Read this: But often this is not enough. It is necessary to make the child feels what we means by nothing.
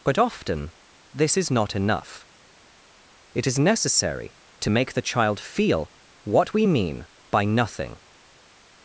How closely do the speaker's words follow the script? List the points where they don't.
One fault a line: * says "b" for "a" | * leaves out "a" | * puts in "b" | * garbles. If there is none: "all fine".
* says "feel" for "feels"
* says "mean" for "means"